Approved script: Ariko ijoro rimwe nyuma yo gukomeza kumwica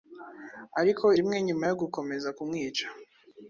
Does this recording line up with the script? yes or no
no